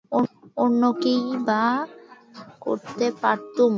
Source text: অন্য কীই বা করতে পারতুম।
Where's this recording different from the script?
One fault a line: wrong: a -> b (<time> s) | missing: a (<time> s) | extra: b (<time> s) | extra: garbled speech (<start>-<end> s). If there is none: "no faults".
no faults